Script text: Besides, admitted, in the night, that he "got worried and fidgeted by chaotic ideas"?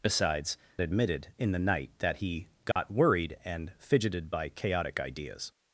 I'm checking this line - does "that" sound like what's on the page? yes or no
yes